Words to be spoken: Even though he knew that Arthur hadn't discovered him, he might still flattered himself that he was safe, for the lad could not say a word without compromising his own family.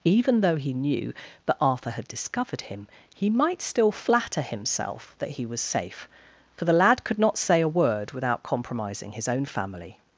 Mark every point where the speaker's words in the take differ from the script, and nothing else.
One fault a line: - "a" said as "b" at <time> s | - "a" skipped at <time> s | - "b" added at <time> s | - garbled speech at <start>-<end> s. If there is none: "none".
- "hadn't" said as "had" at 1.9 s
- "flattered" said as "flatter" at 3.9 s